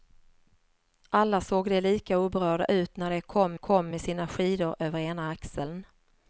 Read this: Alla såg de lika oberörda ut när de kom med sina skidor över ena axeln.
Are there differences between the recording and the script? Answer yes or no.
yes